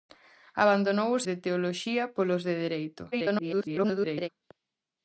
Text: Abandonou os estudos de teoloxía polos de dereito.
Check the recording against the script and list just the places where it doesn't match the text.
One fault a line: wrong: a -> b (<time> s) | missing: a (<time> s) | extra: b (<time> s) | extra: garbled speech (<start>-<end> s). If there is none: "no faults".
missing: estudos (1.2 s)
extra: garbled speech (3.1-4.3 s)